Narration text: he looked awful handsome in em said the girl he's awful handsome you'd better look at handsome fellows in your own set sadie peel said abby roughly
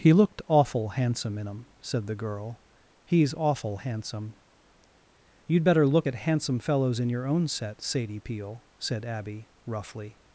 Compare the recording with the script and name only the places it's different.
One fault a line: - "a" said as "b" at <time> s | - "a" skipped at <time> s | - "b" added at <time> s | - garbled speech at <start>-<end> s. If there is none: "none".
none